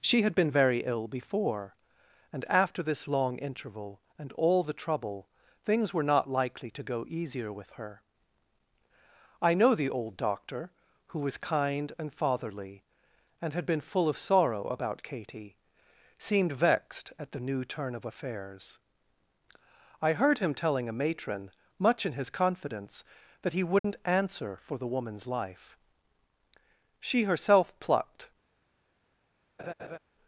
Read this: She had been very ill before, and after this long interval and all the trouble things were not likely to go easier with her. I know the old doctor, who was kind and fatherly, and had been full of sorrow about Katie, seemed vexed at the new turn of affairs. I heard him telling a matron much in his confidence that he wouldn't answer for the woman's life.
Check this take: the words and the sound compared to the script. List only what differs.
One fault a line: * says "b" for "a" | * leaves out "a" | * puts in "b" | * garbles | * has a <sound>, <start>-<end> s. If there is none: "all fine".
* has a dropout, 23.8-23.8 s
* puts in "She herself plucked"
* has a laugh, 29.6-30.0 s